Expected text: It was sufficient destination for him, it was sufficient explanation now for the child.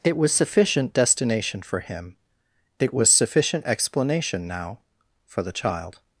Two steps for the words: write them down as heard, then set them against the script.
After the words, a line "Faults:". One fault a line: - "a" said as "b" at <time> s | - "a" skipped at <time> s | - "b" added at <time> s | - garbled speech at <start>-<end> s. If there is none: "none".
It was sufficient destination for him, it was sufficient explanation now for the child.
Faults:
none